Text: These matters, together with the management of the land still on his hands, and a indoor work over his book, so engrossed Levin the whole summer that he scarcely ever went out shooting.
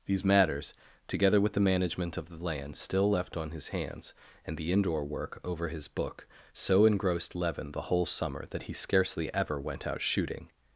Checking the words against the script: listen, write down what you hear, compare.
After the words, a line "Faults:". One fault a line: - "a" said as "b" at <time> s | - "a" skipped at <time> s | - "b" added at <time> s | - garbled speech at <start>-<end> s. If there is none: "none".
These matters, together with the management of the land still left on his hands, and the indoor work over his book, so engrossed Levin the whole summer that he scarcely ever went out shooting.
Faults:
- "left" added at 3.1 s
- "a" said as "the" at 4.6 s